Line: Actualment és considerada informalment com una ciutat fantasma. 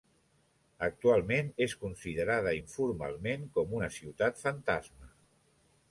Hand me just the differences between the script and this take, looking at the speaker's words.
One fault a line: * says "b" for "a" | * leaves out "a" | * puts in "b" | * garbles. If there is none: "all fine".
all fine